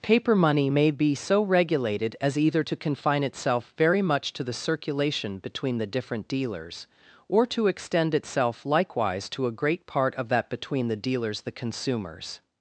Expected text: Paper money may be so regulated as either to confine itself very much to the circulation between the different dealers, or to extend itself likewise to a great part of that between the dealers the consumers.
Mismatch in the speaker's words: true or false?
false